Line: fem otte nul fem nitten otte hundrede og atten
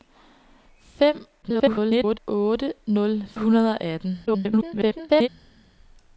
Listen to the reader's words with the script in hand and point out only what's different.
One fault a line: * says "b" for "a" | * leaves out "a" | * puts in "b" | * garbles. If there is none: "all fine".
* garbles
* leaves out "fem nitten otte"
* garbles